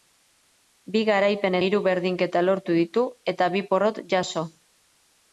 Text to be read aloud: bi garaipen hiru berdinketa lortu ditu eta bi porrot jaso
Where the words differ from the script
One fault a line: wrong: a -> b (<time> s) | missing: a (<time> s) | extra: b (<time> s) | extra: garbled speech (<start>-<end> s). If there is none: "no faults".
no faults